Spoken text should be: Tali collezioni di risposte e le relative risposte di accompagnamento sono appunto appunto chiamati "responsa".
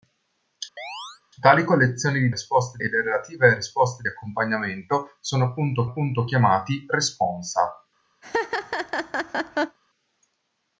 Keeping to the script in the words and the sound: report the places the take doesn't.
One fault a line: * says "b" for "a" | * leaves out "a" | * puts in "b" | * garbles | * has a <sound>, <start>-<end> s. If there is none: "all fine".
* has a chirp, 0.8-1.2 s
* has a laugh, 8.2-9.8 s